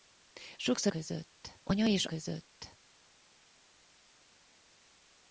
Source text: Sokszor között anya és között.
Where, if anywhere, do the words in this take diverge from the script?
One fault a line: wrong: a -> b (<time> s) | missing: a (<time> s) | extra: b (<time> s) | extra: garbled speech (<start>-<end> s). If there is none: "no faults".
no faults